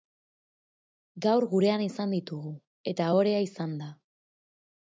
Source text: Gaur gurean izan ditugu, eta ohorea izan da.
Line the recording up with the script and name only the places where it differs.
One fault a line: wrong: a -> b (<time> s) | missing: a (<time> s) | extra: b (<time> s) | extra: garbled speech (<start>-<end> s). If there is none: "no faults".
no faults